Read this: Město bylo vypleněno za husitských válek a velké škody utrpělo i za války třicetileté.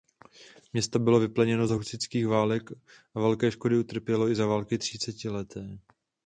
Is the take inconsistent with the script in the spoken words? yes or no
no